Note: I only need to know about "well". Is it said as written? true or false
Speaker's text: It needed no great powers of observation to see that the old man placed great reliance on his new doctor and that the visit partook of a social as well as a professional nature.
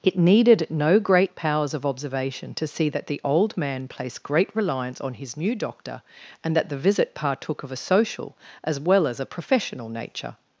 true